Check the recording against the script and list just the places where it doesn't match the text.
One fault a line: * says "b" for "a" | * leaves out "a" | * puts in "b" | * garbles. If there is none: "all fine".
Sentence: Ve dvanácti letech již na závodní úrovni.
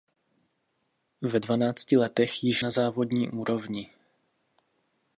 all fine